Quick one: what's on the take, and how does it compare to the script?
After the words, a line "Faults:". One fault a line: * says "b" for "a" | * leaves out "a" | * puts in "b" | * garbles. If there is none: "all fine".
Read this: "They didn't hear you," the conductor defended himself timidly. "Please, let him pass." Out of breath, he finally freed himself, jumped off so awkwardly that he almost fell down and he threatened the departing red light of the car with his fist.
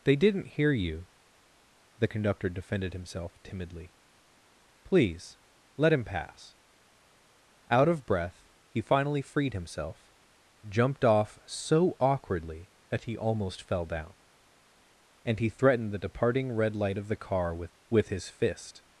"They didn't hear you," the conductor defended himself timidly. "Please, let him pass." Out of breath, he finally freed himself, jumped off so awkwardly that he almost fell down and he threatened the departing red light of the car with with his fist.
Faults:
* puts in "with"